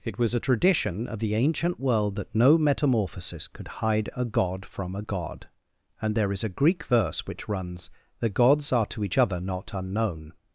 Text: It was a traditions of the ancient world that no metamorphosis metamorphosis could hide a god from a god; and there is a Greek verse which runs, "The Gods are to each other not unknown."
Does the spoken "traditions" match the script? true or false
false